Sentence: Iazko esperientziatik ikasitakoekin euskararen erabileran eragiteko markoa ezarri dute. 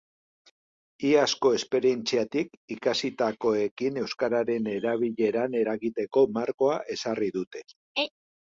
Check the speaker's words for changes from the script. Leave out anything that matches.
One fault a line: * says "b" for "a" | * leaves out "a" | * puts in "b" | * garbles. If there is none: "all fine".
all fine